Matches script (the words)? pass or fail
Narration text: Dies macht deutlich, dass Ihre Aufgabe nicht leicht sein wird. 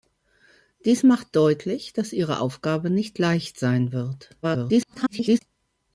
fail